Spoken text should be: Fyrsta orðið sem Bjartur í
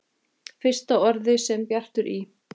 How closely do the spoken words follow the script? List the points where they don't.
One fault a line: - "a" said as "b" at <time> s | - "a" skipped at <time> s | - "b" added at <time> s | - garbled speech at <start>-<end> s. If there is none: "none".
none